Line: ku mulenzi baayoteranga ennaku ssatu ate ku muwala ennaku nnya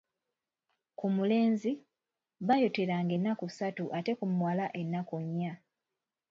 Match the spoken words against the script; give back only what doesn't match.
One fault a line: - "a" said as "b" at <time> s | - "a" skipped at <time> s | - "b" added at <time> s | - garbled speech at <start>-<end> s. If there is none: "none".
none